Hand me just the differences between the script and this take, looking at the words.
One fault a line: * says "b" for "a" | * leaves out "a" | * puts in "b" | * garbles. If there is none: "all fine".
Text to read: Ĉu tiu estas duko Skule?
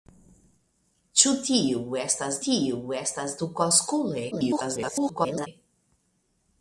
* puts in "tiu estas"
* garbles